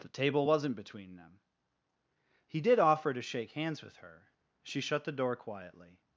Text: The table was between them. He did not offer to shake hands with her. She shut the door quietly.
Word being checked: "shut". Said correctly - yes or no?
yes